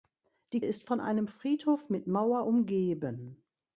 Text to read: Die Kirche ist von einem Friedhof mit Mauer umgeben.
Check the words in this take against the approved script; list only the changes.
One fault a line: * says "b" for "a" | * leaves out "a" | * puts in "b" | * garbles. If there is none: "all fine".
* leaves out "Kirche"